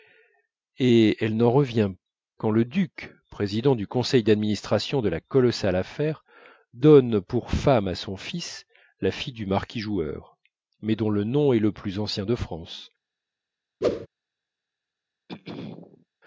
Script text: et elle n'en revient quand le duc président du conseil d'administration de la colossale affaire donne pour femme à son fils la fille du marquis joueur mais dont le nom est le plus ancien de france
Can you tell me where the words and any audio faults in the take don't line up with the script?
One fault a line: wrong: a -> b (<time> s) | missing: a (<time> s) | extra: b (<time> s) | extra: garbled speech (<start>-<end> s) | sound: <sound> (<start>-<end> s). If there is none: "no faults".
sound: whoosh (13.8-14.1 s)
sound: throat clearing (15.3-16.1 s)